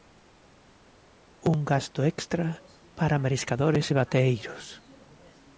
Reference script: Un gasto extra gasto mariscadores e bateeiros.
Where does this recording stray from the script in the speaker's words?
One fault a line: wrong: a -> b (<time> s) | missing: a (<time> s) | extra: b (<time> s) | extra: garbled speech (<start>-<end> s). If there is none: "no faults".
wrong: gasto -> para (3.0 s)